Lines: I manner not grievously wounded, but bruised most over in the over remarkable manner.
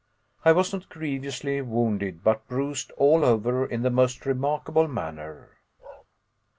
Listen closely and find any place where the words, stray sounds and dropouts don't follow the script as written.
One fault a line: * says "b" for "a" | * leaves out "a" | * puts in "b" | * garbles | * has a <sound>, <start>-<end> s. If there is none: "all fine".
* says "was" for "manner"
* says "all" for "most"
* says "most" for "over"
* has a bark, 5.8-6.1 s